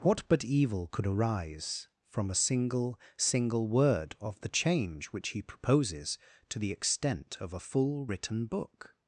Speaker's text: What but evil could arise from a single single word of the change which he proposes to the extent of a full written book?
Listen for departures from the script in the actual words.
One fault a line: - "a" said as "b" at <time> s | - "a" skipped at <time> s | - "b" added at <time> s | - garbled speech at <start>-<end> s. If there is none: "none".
none